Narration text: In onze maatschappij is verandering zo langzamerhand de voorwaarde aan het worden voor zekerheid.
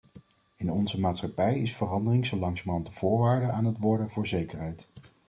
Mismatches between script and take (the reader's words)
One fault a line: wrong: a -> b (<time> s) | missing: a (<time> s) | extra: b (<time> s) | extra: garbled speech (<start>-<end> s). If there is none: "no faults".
no faults